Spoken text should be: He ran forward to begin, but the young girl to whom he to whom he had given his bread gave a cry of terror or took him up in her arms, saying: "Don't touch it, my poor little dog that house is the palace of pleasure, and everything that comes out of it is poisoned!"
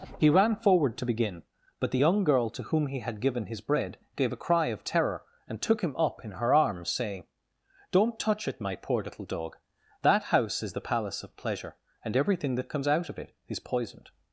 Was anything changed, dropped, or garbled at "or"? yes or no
yes